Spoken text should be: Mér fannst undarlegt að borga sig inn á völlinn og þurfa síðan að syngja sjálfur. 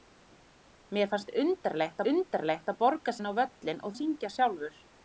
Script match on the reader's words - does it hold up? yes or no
no